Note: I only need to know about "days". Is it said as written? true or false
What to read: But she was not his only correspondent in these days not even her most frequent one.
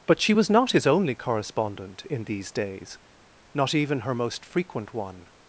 true